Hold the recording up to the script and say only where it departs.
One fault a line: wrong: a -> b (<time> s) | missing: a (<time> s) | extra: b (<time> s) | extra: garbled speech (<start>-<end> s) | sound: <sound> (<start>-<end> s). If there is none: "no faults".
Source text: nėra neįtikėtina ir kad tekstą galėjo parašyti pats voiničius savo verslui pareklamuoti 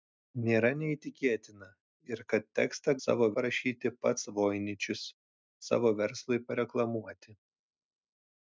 wrong: galėjo -> savo (3.1 s)